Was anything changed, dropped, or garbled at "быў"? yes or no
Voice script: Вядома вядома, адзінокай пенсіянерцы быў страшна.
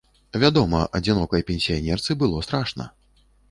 yes